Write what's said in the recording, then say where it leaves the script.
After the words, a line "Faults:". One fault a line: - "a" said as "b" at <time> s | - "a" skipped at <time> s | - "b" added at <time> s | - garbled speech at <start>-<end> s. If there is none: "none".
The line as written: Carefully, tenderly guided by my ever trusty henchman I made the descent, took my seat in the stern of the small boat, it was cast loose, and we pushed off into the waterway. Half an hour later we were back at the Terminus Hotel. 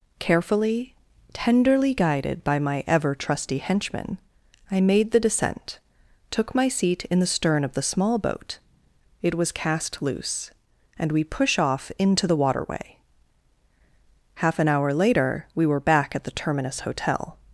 Carefully, tenderly guided by my ever trusty henchman I made the descent, took my seat in the stern of the small boat, it was cast loose, and we push off into the waterway. Half an hour later we were back at the Terminus Hotel.
Faults:
- "pushed" said as "push" at 11.2 s